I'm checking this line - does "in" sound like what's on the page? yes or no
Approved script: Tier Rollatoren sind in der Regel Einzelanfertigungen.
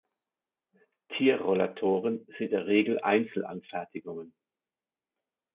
no